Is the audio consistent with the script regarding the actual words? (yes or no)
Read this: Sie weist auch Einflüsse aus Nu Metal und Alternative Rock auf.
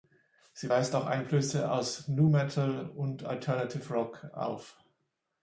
yes